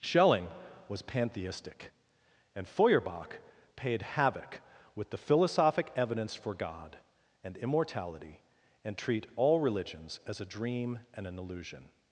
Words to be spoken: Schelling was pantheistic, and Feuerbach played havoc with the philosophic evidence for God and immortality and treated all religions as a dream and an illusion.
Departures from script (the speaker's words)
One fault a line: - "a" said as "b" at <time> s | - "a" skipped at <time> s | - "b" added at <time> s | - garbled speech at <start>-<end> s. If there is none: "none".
- "played" said as "paid" at 3.8 s
- "treated" said as "treat" at 9.0 s